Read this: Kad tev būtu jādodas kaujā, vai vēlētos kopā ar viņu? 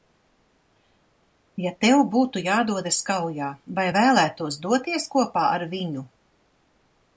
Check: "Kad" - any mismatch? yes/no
yes